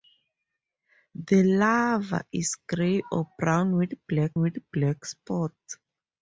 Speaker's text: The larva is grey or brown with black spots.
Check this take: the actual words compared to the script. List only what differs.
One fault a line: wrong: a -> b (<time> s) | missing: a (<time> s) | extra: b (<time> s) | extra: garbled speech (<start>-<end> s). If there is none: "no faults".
extra: with black (4.4 s)